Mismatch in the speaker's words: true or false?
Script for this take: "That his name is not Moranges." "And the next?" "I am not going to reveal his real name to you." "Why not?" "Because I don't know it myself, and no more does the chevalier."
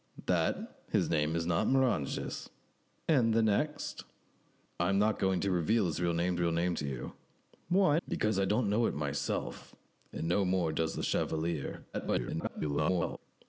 true